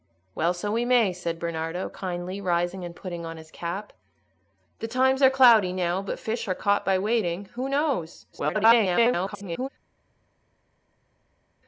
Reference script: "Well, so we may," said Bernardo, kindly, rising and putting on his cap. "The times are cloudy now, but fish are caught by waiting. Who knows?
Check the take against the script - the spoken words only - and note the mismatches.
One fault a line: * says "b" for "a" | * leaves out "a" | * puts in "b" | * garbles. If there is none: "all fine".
* garbles